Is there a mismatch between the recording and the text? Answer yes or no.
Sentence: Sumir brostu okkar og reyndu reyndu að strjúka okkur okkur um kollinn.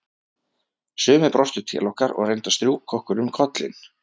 yes